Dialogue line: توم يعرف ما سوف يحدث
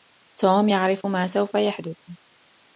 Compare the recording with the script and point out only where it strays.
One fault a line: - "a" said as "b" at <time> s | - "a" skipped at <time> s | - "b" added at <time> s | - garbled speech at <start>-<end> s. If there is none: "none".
none